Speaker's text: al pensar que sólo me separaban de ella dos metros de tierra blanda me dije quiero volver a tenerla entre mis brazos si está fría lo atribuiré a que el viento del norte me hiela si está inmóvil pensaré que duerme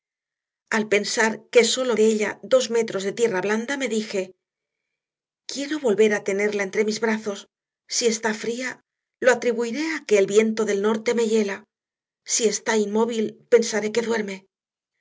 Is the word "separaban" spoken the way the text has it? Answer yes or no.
no